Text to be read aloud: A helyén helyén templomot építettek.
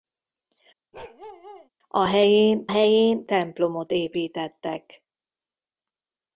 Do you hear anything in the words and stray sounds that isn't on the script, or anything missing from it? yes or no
yes